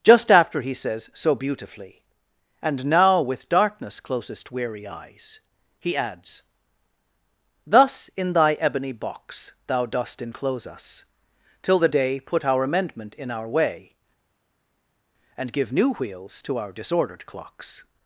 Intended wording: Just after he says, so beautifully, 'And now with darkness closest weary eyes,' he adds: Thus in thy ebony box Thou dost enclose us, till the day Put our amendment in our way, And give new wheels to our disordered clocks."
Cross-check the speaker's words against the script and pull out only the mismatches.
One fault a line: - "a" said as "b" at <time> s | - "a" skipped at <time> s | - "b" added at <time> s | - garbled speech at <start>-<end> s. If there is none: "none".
none